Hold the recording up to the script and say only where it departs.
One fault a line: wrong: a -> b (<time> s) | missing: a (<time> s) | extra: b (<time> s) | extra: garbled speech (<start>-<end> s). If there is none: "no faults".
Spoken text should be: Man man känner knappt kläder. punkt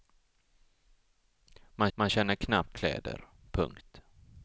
no faults